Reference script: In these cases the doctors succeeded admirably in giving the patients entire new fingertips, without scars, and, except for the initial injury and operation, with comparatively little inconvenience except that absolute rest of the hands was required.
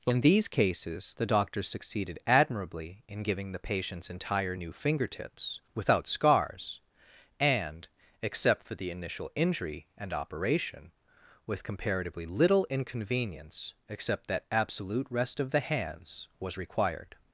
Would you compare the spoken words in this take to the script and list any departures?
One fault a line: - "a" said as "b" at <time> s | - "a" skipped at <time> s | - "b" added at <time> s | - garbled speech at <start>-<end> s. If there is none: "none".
none